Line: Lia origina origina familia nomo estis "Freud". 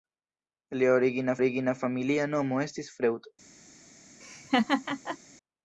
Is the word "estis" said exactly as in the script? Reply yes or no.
yes